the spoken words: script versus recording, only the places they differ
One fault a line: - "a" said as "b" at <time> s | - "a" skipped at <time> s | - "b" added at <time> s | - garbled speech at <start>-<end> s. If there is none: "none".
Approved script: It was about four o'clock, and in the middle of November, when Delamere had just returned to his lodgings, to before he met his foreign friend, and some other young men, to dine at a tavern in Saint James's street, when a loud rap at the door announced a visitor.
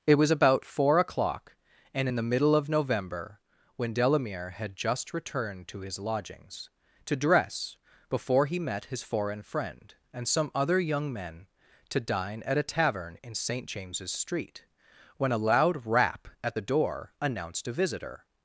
- "dress" added at 7.2 s